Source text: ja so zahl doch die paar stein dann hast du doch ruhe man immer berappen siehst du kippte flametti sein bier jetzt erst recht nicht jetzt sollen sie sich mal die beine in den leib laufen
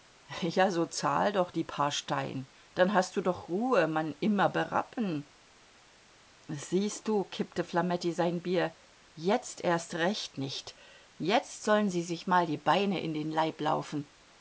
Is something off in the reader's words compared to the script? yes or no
no